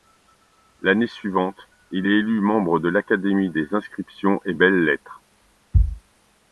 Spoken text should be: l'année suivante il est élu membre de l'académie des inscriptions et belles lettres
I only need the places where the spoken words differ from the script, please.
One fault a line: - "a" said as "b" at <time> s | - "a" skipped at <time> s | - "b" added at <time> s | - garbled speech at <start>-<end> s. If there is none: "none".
none